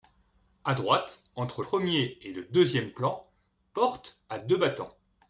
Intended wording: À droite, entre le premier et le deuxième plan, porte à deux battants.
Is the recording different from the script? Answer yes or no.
yes